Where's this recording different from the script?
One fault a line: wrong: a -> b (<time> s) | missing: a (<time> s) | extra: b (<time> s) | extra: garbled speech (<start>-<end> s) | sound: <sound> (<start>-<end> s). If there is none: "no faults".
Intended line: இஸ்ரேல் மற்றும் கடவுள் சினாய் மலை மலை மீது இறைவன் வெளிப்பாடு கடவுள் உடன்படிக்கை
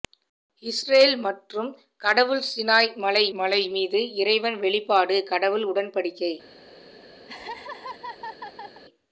sound: laugh (7.3-8.8 s)